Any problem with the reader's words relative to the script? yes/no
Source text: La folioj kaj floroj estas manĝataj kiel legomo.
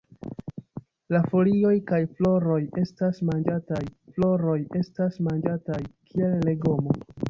yes